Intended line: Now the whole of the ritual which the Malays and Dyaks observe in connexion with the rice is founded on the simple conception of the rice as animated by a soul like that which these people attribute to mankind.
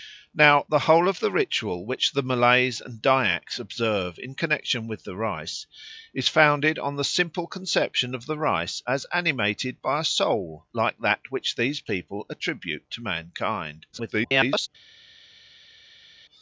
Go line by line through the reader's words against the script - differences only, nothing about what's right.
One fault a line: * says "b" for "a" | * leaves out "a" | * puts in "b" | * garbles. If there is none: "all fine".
* garbles